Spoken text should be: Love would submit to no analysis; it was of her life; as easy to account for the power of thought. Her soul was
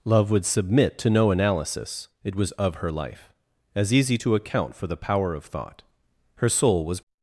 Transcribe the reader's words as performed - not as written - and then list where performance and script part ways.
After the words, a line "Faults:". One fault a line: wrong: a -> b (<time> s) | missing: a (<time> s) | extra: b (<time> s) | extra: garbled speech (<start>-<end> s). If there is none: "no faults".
Love would submit to no analysis; it was of her life; as easy to account for the power of thought. Her soul was
Faults:
no faults